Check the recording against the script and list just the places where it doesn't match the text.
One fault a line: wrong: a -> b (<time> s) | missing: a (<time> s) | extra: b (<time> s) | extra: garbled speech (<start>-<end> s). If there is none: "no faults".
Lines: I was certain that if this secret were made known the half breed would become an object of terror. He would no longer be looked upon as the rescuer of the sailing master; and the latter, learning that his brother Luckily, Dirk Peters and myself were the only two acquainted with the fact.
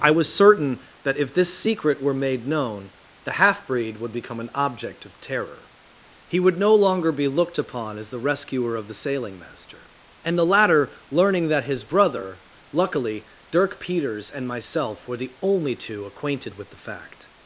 no faults